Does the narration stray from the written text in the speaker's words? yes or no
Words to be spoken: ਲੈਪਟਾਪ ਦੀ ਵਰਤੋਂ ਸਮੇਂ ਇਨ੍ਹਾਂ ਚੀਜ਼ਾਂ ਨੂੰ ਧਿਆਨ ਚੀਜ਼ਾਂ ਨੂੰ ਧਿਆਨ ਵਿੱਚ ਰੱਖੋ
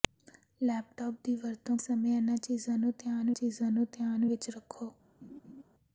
no